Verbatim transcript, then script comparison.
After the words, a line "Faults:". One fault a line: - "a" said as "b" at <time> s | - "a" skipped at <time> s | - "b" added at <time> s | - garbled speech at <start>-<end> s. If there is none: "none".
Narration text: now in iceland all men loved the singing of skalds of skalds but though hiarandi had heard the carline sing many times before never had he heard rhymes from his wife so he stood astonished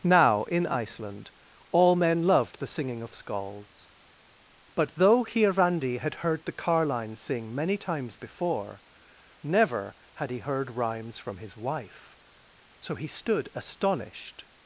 now in iceland all men loved the singing of skalds but though hiarandi had heard the carline sing many times before never had he heard rhymes from his wife so he stood astonished
Faults:
- "of skalds" skipped at 3.9 s